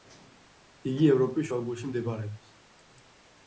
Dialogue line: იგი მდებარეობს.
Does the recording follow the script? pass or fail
fail